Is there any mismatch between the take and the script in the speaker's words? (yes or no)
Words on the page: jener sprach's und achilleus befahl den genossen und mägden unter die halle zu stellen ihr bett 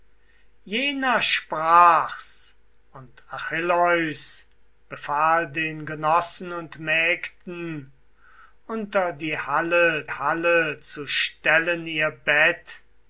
yes